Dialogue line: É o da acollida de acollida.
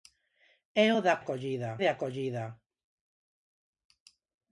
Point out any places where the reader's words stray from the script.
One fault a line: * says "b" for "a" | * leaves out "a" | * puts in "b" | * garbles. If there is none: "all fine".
all fine